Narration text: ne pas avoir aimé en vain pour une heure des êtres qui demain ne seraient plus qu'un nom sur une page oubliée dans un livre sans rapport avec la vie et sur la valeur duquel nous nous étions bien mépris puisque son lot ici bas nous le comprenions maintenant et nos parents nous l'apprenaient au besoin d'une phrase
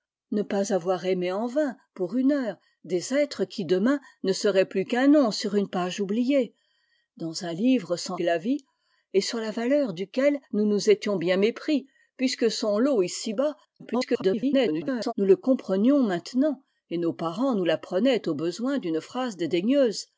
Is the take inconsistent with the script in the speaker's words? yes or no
yes